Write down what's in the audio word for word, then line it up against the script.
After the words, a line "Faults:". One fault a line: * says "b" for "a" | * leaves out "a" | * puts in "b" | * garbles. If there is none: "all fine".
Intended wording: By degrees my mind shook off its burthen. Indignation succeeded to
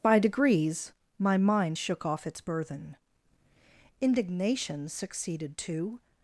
By degrees my mind shook off its burthen. Indignation succeeded to
Faults:
all fine